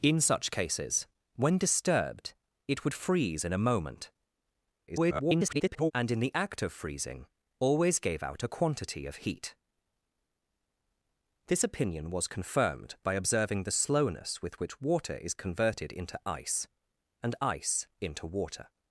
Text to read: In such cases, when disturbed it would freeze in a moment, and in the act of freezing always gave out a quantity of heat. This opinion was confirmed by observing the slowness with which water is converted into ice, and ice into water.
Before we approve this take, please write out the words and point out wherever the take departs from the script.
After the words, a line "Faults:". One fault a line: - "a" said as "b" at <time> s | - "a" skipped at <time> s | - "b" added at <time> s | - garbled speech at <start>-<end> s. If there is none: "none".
In such cases, when disturbed it would freeze in a moment, [garbled] and in the act of freezing always gave out a quantity of heat. This opinion was confirmed by observing the slowness with which water is converted into ice, and ice into water.
Faults:
- garbled speech at 4.9-5.9 s